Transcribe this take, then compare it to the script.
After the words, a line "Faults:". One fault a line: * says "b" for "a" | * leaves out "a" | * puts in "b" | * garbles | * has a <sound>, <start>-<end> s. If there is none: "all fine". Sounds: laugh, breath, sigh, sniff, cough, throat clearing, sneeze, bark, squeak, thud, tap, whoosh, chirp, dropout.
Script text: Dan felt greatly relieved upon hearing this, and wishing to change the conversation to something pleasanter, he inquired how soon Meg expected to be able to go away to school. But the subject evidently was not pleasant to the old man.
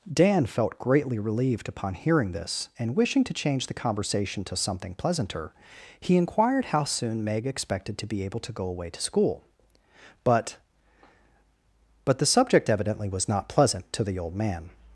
Dan felt greatly relieved upon hearing this, and wishing to change the conversation to something pleasanter, he inquired how soon Meg expected to be able to go away to school. But But the subject evidently was not pleasant to the old man.
Faults:
* puts in "But"